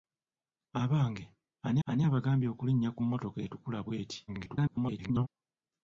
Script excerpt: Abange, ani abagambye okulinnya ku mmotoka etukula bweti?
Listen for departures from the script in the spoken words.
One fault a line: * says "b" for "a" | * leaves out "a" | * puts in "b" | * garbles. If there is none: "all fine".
* puts in "ani"
* garbles